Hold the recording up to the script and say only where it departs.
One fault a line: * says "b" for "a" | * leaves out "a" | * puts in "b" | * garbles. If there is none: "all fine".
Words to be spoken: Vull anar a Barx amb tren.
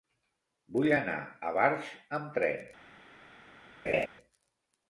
all fine